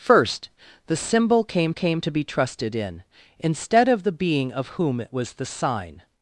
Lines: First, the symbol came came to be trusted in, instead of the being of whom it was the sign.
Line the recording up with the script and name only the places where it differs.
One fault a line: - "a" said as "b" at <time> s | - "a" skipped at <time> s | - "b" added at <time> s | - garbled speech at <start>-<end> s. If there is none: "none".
none